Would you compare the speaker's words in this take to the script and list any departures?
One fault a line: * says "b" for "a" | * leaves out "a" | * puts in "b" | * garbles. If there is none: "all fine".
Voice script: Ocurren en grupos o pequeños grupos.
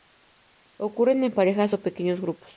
* says "parejas" for "grupos"